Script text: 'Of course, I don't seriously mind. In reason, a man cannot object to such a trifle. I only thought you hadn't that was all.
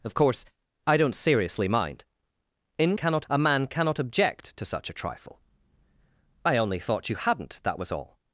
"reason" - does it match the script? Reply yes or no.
no